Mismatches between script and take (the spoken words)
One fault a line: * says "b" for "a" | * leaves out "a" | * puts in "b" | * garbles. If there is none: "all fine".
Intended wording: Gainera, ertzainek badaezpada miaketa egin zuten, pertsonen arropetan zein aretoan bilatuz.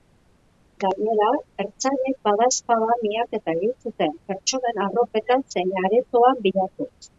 all fine